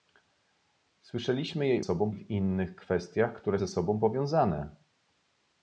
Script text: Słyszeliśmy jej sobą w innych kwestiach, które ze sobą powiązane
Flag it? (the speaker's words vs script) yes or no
no